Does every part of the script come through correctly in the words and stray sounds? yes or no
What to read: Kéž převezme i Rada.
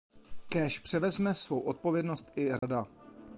no